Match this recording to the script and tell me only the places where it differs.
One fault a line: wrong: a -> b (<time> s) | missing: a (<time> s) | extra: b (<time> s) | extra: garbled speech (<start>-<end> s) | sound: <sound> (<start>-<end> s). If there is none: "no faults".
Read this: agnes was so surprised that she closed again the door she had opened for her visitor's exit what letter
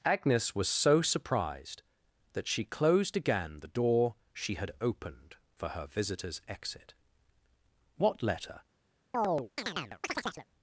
sound: chirp (9.1-10.5 s)